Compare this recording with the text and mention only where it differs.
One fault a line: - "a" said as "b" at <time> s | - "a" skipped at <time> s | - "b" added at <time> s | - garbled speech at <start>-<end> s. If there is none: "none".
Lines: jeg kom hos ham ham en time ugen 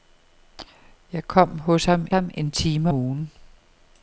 none